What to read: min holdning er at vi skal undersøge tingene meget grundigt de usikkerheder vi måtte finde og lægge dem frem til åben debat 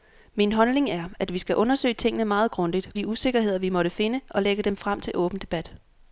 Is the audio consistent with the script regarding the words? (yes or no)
yes